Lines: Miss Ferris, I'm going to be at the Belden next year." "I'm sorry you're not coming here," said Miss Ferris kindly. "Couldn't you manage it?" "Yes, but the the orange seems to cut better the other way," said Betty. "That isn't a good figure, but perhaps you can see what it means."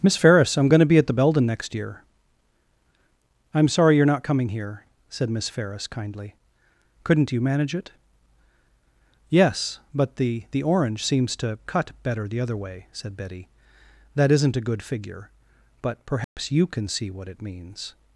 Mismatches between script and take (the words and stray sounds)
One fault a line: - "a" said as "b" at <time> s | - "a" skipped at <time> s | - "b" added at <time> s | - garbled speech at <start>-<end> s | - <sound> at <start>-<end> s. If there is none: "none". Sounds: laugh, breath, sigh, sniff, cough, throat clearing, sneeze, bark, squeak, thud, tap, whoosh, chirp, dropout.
- dropout at 16.2-16.4 s